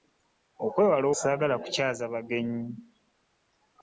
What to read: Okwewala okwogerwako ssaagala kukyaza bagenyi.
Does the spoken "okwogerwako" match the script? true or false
false